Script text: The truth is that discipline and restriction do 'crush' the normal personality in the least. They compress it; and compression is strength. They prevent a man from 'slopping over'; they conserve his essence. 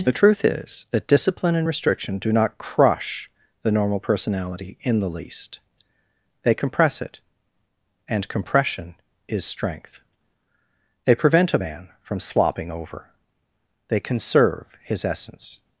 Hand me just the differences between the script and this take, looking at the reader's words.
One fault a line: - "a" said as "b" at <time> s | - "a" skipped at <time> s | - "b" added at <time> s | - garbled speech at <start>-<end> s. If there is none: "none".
- "not" added at 2.3 s